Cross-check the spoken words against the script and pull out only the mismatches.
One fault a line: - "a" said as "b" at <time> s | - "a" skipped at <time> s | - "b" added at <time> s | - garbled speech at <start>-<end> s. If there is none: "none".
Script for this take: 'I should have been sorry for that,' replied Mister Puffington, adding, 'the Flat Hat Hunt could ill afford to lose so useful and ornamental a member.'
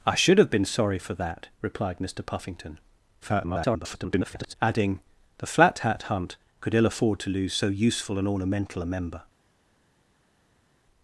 - garbled speech at 3.2-4.6 s